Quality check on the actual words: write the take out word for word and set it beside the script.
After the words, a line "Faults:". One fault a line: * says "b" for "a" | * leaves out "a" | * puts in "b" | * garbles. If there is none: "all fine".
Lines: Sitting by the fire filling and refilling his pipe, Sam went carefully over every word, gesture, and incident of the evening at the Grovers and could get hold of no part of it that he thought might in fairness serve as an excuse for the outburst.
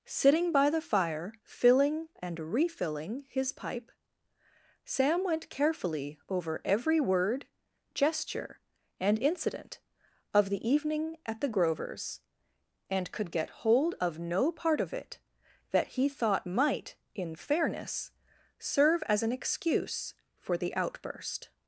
Sitting by the fire filling and refilling his pipe, Sam went carefully over every word, gesture, and incident of the evening at the Grovers and could get hold of no part of it that he thought might in fairness serve as an excuse for the outburst.
Faults:
all fine